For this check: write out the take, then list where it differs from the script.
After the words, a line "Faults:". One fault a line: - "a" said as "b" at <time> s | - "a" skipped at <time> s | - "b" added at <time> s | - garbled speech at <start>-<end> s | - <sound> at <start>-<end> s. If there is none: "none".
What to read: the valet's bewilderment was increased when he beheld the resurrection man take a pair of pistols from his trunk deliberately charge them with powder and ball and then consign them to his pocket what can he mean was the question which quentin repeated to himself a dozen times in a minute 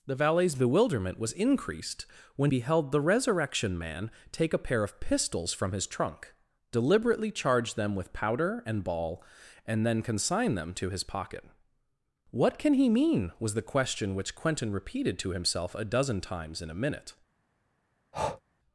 the valet's bewilderment was increased when beheld the resurrection man take a pair of pistols from his trunk deliberately charge them with powder and ball and then consign them to his pocket what can he mean was the question which quentin repeated to himself a dozen times in a minute
Faults:
- "he" skipped at 2.5 s
- breath at 18.1-18.4 s